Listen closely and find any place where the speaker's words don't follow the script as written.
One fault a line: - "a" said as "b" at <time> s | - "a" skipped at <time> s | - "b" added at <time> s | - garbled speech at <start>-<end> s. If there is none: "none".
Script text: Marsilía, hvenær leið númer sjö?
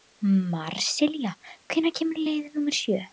- "kemur" added at 2.0 s